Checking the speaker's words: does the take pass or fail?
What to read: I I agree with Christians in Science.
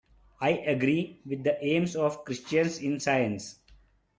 fail